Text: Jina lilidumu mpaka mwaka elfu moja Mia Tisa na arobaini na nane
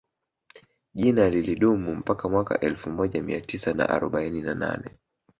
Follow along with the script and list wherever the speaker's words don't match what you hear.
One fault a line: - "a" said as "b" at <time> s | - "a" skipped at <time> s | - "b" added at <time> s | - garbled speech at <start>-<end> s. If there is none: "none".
none